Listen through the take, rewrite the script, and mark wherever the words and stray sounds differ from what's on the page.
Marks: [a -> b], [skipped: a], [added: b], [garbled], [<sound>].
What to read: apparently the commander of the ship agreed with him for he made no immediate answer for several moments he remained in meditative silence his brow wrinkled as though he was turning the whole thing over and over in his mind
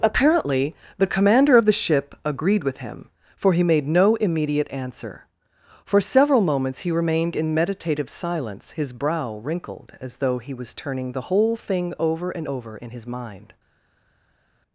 apparently the commander of the ship agreed with him for he made no immediate answer for several moments he remained in meditative silence his brow wrinkled as though he was turning the whole thing over and over in his mind